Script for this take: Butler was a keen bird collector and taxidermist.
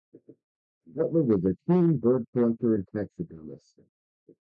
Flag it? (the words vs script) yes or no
no